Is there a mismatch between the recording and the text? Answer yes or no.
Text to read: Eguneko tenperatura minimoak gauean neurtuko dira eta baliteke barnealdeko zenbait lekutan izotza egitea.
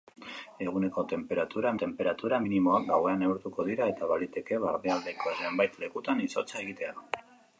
yes